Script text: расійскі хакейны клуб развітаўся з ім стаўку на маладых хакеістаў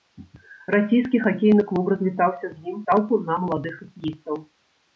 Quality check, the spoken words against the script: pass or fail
pass